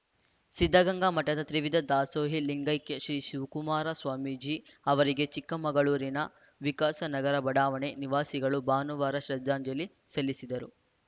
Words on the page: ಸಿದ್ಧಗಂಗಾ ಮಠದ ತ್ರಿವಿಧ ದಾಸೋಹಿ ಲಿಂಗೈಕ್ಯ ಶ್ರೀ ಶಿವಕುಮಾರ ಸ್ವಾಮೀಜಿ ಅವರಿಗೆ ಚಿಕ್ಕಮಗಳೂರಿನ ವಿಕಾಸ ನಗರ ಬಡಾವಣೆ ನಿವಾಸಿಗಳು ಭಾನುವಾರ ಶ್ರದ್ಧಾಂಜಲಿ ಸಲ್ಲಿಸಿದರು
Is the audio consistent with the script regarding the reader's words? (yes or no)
yes